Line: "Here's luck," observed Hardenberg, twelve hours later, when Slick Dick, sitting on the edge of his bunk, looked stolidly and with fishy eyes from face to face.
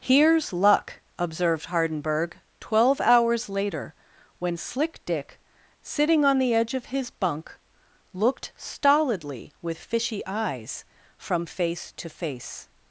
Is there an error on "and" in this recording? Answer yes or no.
yes